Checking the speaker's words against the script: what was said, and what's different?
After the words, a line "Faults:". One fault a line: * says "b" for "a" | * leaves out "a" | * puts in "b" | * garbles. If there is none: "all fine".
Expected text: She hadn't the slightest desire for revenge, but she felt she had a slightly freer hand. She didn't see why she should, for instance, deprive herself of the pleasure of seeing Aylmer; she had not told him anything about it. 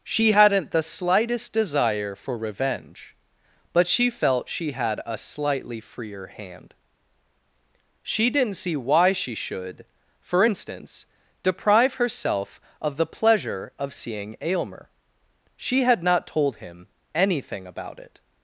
She hadn't the slightest desire for revenge, but she felt she had a slightly freer hand. She didn't see why she should, for instance, deprive herself of the pleasure of seeing Aylmer; she had not told him anything about it.
Faults:
all fine